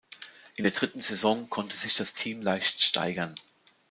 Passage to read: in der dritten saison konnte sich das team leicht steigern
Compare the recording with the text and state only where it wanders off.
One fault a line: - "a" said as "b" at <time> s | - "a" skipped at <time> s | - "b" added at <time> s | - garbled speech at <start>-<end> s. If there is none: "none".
none